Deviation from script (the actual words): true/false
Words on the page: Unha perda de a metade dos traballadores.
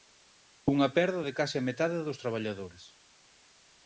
true